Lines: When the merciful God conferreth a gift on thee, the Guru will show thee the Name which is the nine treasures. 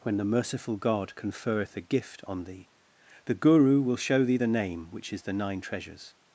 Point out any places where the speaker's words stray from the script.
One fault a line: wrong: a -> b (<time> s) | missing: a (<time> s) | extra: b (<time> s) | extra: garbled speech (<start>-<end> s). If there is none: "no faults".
no faults